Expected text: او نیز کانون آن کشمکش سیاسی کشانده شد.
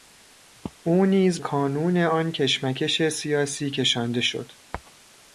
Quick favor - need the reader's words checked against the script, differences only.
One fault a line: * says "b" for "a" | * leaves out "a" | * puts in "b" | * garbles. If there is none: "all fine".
all fine